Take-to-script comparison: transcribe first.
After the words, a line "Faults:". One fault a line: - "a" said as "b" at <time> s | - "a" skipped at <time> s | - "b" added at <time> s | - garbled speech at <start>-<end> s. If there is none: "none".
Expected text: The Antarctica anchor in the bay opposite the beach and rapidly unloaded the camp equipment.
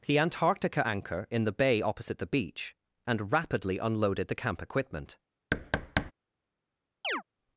The Antarctica anchor in the bay opposite the beach and rapidly unloaded the camp equipment.
Faults:
none